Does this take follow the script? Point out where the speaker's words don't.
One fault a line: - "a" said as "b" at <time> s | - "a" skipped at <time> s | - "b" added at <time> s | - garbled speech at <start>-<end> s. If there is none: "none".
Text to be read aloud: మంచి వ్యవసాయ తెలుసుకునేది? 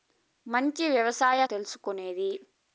none